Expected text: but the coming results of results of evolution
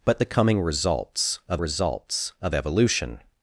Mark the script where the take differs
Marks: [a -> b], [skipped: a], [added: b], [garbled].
but the coming results of results of evolution